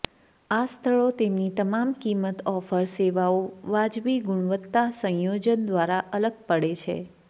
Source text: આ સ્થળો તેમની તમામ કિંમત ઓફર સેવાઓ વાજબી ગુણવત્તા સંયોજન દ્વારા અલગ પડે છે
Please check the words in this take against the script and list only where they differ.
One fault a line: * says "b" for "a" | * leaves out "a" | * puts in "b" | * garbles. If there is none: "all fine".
all fine